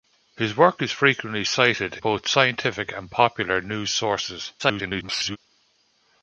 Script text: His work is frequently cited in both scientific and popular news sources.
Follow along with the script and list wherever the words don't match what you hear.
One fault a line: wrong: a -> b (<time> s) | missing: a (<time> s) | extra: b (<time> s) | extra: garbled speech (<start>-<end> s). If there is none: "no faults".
missing: in (2.0 s)
extra: garbled speech (4.6-5.4 s)